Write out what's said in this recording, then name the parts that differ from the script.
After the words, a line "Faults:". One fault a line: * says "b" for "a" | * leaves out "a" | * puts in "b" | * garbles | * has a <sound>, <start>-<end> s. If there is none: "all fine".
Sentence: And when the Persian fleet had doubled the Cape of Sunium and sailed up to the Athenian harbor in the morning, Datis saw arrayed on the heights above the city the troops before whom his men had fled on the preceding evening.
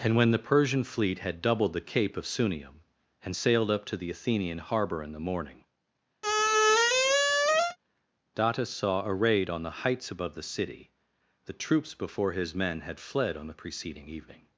And when the Persian fleet had doubled the Cape of Sunium and sailed up to the Athenian harbor in the morning, Datis saw arrayed on the heights above the city the troops before his men had fled on the preceding evening.
Faults:
* has a squeak, 6.2-7.8 s
* leaves out "whom"